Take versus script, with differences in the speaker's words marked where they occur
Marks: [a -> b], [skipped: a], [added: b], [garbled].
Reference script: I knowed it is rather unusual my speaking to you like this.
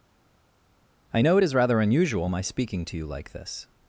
I [knowed -> know] it is rather unusual my speaking to you like this.